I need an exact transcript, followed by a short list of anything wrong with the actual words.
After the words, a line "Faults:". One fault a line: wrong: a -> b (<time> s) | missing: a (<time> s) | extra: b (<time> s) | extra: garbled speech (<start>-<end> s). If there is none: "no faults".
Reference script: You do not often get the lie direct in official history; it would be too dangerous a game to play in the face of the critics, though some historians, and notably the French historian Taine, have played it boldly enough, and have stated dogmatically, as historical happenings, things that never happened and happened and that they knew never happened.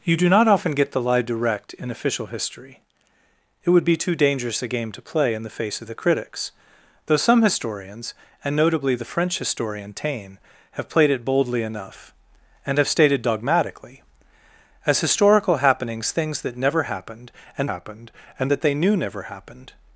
You do not often get the lie direct in official history; it would be too dangerous a game to play in the face of the critics, though some historians, and notably the French historian Taine, have played it boldly enough, and have stated dogmatically, as historical happenings, things that never happened and happened and that they knew never happened.
Faults:
no faults